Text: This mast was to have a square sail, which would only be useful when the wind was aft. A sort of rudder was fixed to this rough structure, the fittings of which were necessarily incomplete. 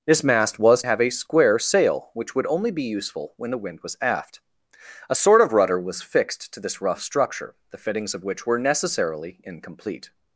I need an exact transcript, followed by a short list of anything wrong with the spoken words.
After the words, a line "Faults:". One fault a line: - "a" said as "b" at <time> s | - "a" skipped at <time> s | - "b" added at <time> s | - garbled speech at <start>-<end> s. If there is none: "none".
This mast was have a square sail, which would only be useful when the wind was aft. A sort of rudder was fixed to this rough structure, the fittings of which were necessarily incomplete.
Faults:
- "to" skipped at 0.8 s